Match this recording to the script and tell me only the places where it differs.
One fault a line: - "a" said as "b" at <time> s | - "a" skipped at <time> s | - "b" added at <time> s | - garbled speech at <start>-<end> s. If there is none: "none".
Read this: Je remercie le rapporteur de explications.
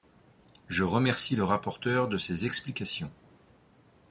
- "ses" added at 2.2 s